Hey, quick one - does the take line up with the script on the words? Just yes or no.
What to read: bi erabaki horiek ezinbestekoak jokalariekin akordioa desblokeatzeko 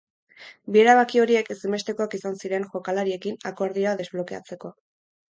no